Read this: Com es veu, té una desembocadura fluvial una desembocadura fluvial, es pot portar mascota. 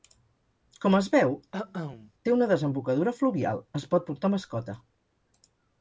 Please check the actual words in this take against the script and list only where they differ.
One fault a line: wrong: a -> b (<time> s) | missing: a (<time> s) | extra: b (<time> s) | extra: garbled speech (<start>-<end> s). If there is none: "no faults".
missing: una desembocadura fluvial (3.7 s)